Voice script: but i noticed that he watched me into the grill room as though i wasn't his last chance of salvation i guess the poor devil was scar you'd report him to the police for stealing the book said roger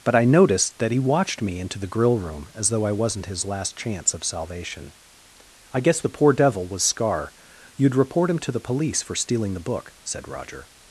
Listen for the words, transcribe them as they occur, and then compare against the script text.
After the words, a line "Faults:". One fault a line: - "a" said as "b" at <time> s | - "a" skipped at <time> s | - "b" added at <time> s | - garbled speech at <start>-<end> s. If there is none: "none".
but i noticed that he watched me into the grill room as though i wasn't his last chance of salvation i guess the poor devil was scar you'd report him to the police for stealing the book said roger
Faults:
none